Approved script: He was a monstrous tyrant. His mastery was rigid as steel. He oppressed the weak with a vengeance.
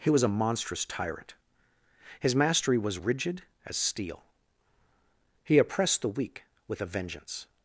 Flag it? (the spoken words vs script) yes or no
no